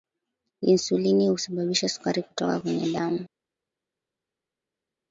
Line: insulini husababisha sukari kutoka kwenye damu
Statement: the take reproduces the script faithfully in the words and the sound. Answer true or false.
true